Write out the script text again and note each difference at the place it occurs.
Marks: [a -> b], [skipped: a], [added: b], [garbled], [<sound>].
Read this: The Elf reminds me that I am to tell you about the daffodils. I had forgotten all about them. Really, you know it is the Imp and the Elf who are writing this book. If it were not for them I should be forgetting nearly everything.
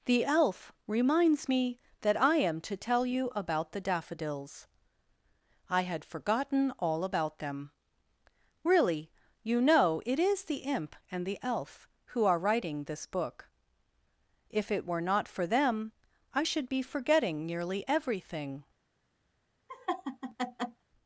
The Elf reminds me that I am to tell you about the daffodils. I had forgotten all about them. Really, you know it is the Imp and the Elf who are writing this book. If it were not for them I should be forgetting nearly everything. [laugh]